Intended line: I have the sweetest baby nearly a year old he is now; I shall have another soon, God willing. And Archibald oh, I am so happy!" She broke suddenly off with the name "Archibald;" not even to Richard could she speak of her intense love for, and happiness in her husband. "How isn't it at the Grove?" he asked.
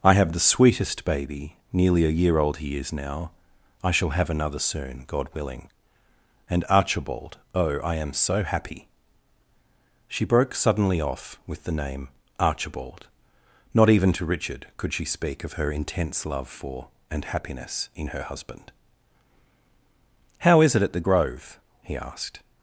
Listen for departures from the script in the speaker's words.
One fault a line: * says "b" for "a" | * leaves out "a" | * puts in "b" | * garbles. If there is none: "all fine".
* says "is" for "isn't"